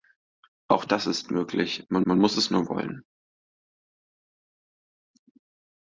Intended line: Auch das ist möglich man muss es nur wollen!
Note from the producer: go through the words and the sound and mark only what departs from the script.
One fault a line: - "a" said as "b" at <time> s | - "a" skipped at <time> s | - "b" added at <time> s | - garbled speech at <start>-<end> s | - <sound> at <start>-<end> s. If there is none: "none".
- "man" added at 2.0 s